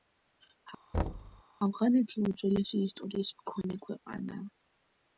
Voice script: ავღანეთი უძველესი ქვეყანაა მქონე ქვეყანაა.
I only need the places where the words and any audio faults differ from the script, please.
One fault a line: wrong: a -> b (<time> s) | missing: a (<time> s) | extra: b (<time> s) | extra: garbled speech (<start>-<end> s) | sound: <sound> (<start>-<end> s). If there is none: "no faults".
sound: thud (0.9-1.4 s)
wrong: ქვეყანაა -> ისტორიის (2.9 s)